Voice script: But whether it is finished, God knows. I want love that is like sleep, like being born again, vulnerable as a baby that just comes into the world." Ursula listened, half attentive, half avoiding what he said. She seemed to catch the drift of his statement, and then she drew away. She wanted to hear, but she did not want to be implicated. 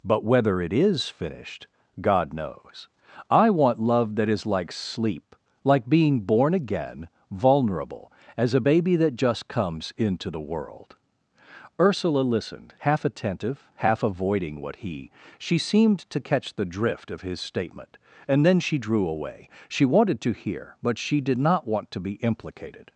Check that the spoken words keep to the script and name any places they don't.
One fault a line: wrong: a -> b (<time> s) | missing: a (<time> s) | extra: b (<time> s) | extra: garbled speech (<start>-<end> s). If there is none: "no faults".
missing: said (15.1 s)